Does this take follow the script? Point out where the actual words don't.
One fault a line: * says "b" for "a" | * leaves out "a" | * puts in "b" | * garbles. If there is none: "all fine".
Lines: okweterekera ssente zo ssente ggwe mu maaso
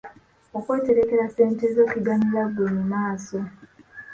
* says "kiganyula" for "ssente"